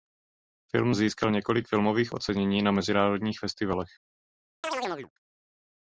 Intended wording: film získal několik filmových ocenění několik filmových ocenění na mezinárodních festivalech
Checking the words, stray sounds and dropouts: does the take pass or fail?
fail